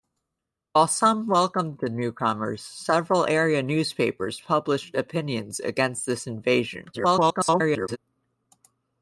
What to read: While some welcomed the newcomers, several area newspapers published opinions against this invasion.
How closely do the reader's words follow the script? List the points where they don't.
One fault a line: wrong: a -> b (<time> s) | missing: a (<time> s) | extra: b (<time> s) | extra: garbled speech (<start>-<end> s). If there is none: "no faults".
extra: garbled speech (6.9-8.0 s)